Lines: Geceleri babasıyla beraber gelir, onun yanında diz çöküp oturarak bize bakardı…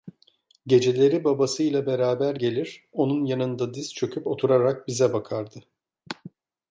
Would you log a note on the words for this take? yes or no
no